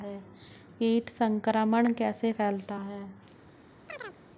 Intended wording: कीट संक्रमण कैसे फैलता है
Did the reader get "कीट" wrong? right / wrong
right